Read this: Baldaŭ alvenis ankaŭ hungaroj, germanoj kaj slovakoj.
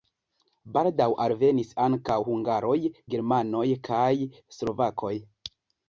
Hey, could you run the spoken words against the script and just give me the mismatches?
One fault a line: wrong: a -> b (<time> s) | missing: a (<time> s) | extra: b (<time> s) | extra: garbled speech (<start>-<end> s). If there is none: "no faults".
no faults